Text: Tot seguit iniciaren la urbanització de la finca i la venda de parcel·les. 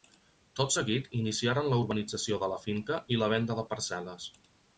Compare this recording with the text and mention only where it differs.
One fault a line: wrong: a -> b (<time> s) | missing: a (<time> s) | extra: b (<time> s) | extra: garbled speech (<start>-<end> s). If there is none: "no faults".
no faults